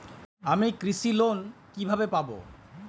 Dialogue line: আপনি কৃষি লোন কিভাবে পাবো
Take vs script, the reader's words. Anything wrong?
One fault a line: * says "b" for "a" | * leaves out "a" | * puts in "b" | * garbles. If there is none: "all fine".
* says "আমি" for "আপনি"